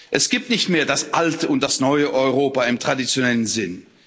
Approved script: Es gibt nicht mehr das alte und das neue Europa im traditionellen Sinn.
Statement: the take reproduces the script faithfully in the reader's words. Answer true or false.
true